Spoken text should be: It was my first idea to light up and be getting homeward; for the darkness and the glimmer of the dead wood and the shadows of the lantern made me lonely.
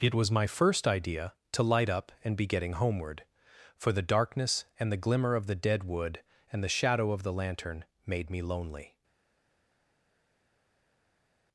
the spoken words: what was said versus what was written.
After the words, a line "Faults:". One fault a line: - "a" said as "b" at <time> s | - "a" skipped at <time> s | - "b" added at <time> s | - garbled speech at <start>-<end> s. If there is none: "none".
It was my first idea to light up and be getting homeward; for the darkness and the glimmer of the dead wood and the shadow of the lantern made me lonely.
Faults:
- "shadows" said as "shadow" at 6.7 s